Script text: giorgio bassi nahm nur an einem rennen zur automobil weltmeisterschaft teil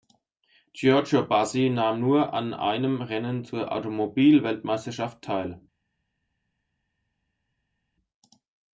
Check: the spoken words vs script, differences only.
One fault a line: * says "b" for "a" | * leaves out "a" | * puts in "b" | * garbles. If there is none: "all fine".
all fine